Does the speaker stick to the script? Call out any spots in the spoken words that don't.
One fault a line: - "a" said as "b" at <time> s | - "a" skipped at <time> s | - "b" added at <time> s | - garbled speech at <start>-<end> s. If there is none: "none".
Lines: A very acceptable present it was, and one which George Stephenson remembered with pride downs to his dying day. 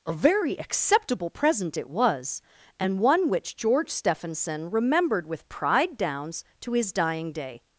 none